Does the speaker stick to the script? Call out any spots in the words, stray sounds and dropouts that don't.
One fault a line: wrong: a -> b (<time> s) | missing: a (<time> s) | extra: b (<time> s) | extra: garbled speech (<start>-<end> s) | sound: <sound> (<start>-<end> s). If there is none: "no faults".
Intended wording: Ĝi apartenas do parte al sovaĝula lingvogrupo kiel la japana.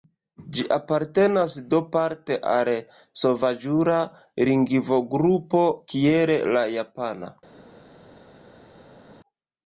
no faults